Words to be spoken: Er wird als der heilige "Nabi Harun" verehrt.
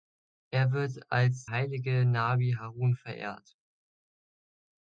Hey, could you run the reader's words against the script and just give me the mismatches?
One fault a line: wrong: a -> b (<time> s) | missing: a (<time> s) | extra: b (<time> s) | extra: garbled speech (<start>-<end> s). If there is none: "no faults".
missing: der (1.4 s)